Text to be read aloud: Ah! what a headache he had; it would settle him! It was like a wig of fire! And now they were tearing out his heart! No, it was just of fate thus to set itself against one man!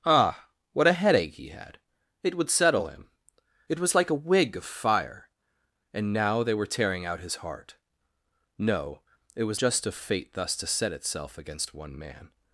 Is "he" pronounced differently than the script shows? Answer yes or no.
no